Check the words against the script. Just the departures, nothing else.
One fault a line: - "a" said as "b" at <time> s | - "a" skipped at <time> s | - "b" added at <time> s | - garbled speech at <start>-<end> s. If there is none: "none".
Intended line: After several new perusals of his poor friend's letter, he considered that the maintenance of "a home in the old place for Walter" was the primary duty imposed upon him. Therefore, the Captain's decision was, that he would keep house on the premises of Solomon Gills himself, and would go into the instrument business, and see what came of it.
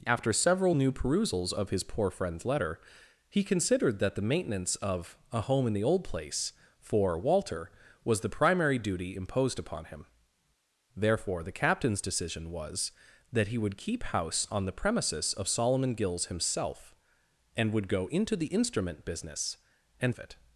- "see what came" skipped at 20.2 s